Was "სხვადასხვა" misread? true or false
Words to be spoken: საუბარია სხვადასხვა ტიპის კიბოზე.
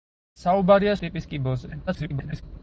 true